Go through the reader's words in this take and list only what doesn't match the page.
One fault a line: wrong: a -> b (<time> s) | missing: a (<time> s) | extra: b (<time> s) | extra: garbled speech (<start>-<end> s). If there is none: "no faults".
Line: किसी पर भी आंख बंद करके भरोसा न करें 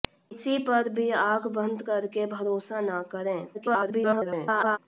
extra: garbled speech (3.5-4.8 s)